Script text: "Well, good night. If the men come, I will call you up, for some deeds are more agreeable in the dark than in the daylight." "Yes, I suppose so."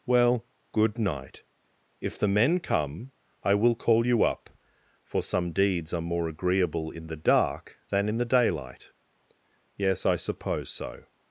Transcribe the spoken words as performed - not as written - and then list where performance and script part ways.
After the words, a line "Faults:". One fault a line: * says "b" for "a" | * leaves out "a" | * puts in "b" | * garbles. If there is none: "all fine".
"Well, good night. If the men come, I will call you up, for some deeds are more agreeable in the dark than in the daylight." "Yes, I suppose so."
Faults:
all fine